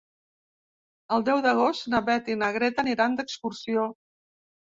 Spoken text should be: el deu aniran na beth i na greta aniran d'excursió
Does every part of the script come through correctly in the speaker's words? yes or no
no